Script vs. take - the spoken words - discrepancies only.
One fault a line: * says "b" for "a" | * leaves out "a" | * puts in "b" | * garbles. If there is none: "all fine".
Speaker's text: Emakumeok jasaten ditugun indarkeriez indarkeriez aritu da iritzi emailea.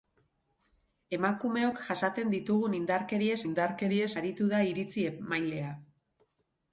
all fine